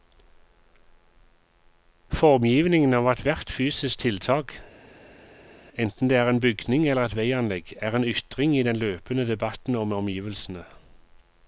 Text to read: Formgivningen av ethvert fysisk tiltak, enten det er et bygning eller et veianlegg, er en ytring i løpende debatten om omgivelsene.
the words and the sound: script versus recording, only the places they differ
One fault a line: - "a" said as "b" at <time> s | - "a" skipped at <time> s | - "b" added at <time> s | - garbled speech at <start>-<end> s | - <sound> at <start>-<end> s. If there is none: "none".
- "et" said as "en" at 6.3 s
- "den" added at 8.6 s